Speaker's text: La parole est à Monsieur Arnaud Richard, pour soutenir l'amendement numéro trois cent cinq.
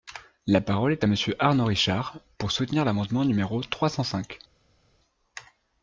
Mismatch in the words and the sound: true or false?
false